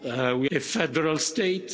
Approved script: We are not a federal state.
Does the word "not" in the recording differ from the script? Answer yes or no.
yes